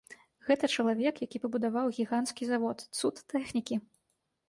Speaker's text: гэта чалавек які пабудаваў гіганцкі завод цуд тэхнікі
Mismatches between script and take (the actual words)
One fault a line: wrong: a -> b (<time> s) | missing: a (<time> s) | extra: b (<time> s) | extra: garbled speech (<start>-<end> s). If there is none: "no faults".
no faults